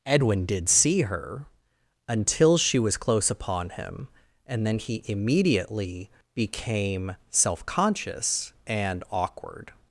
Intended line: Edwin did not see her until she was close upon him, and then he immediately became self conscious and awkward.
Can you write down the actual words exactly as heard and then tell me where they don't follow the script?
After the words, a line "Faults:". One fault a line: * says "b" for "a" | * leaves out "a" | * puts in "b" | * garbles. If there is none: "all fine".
Edwin did see her until she was close upon him, and then he immediately became self conscious and awkward.
Faults:
* leaves out "not"